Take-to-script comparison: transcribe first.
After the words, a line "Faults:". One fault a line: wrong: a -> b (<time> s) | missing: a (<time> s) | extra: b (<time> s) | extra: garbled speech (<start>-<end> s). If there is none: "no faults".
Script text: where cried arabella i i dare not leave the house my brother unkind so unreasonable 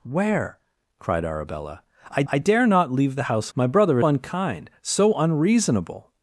where cried arabella i i dare not leave the house my brother unkind so unreasonable
Faults:
no faults